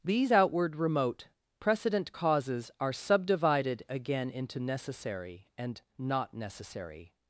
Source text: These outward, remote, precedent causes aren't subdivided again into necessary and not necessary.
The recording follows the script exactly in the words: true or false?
false